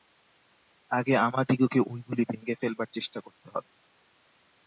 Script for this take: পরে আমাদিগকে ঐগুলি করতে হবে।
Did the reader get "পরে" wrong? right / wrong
wrong